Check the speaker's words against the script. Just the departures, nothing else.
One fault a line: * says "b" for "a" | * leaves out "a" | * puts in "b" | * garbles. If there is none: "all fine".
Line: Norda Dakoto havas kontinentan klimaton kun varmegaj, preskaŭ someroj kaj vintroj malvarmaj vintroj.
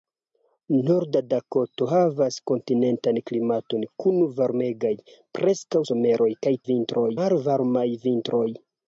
all fine